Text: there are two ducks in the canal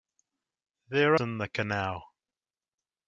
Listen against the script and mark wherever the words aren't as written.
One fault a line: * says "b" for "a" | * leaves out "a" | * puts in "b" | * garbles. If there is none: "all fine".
* leaves out "are two ducks"